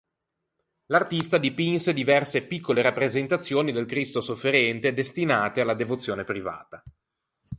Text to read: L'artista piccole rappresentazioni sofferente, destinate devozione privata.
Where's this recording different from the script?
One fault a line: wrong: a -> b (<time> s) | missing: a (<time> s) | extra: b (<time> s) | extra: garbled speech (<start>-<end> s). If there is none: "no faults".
extra: dipinse diverse (1.4 s)
extra: del Cristo (3.7 s)
extra: alla (5.6 s)